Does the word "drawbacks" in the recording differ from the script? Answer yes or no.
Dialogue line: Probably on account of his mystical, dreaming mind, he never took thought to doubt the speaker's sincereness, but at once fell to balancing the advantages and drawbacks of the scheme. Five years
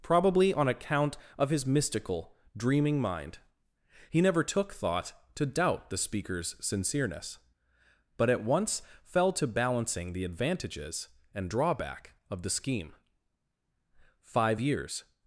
yes